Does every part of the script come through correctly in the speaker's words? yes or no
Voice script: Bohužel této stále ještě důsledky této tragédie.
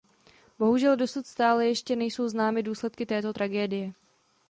no